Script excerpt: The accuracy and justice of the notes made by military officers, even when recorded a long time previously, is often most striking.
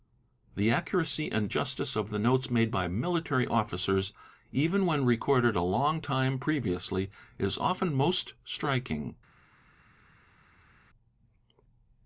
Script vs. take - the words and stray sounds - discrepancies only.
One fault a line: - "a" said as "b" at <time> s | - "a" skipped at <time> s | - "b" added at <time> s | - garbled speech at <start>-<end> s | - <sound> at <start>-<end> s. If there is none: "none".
none